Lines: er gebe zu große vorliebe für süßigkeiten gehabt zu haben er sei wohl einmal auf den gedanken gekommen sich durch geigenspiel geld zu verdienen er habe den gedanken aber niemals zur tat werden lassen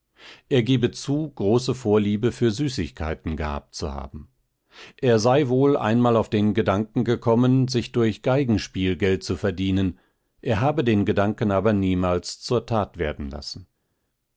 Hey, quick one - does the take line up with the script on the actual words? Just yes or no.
yes